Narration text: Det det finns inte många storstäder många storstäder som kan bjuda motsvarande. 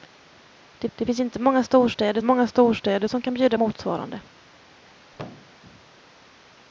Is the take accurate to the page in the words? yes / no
yes